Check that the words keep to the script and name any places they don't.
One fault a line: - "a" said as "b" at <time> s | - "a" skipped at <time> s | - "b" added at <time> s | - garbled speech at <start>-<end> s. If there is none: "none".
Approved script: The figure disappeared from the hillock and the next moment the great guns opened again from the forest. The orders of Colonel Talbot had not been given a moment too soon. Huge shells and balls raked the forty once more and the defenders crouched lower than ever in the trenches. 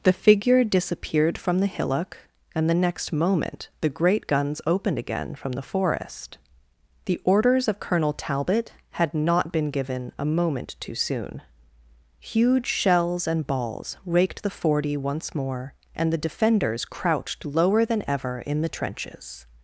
none